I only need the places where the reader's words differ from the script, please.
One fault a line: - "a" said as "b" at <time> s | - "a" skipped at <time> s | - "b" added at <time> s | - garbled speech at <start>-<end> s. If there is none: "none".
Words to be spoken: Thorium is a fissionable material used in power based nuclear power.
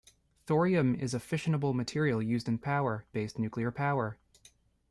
none